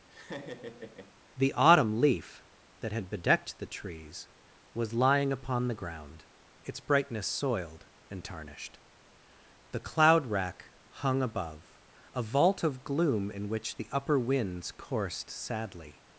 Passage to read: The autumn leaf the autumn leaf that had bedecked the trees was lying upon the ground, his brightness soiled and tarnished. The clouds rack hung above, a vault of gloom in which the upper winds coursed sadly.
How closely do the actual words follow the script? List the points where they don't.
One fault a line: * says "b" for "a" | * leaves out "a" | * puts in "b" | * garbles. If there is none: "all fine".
* leaves out "the autumn leaf"
* says "its" for "his"
* says "cloud" for "clouds"